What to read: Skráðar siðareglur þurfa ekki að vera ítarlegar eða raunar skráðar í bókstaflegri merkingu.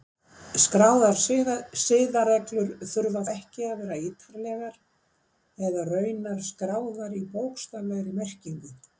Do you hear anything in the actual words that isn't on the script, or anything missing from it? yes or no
no